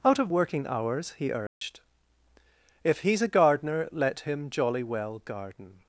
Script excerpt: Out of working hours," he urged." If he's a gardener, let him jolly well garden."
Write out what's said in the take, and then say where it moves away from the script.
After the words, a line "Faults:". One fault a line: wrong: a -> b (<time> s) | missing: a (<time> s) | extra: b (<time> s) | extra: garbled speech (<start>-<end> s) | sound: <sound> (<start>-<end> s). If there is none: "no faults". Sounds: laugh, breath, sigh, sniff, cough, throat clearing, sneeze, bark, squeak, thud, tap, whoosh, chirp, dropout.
Out of working hours," he urged." If he's a gardener, let him jolly well garden."
Faults:
sound: dropout (1.5-1.6 s)